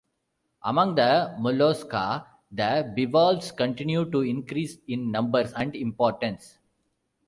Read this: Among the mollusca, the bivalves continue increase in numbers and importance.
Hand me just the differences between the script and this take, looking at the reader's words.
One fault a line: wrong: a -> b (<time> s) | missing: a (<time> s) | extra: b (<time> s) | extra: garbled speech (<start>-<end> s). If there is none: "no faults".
extra: to (4.1 s)